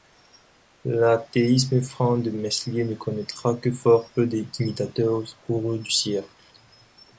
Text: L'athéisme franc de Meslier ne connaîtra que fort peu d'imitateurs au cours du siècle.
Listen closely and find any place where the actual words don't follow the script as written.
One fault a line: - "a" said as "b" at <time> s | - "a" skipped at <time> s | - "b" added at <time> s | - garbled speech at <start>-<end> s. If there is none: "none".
none